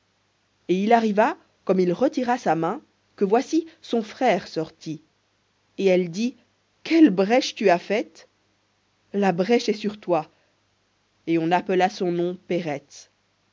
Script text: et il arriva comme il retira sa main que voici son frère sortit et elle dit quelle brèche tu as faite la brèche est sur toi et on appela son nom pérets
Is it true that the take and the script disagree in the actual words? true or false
false